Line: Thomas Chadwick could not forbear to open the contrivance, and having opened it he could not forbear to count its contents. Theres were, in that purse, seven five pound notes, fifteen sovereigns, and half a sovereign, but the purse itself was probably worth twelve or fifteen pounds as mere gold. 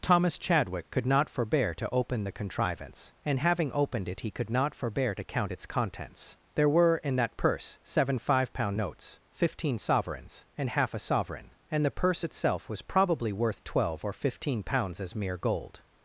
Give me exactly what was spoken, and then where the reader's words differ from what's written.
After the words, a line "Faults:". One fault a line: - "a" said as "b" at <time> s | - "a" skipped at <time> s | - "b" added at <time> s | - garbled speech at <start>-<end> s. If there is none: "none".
Thomas Chadwick could not forbear to open the contrivance, and having opened it he could not forbear to count its contents. There were, in that purse, seven five pound notes, fifteen sovereigns, and half a sovereign, and the purse itself was probably worth twelve or fifteen pounds as mere gold.
Faults:
- "Theres" said as "There" at 6.6 s
- "but" said as "and" at 11.7 s